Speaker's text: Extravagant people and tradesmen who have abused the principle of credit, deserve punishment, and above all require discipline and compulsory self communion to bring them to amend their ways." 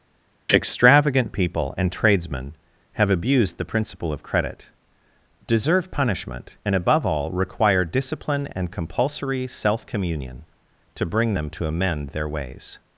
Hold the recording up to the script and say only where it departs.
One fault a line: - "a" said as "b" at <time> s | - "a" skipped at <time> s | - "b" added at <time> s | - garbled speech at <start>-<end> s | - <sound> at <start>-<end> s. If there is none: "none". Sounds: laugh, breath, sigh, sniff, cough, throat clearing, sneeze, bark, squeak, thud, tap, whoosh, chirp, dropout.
- "who" skipped at 2.5 s